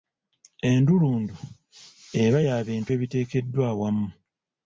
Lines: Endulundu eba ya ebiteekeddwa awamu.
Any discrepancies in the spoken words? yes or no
yes